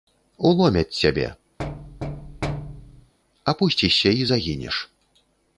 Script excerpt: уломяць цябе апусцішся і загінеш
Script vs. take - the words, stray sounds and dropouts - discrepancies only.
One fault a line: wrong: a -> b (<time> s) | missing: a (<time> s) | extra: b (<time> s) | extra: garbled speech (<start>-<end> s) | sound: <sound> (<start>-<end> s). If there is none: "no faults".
sound: thud (1.6-3.1 s)